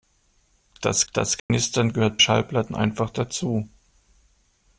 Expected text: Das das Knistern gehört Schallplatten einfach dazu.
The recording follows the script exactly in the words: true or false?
true